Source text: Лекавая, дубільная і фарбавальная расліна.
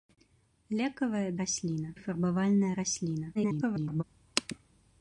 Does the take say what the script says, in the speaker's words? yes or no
no